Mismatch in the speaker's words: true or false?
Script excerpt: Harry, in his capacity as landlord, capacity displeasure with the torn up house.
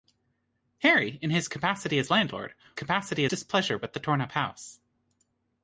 false